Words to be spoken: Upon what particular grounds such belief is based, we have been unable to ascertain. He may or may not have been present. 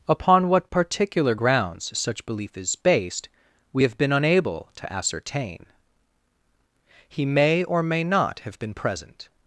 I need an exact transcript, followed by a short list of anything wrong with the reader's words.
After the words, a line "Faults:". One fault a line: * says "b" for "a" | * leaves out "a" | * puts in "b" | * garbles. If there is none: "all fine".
Upon what particular grounds such belief is based, we have been unable to ascertain. He may or may not have been present.
Faults:
all fine